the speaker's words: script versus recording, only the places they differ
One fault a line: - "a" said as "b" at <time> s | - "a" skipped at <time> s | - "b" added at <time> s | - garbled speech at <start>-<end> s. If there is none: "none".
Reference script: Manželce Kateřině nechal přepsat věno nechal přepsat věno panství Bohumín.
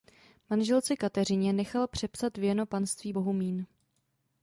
- "nechal přepsat věno" skipped at 2.6 s